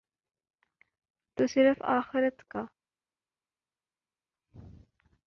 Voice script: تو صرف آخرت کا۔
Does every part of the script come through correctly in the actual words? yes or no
yes